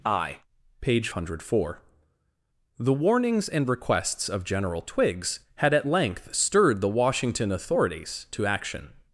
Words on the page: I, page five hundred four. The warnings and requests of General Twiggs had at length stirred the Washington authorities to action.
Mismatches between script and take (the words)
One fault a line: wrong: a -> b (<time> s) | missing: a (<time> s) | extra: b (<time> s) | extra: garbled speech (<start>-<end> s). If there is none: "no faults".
missing: five (1.1 s)